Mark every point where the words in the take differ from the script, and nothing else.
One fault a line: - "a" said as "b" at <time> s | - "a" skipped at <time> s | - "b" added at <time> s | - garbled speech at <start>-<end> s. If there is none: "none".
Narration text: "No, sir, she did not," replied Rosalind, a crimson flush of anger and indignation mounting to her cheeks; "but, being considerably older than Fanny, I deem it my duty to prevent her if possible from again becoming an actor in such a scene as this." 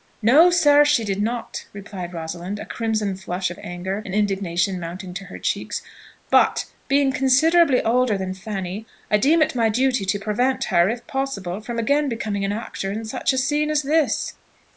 none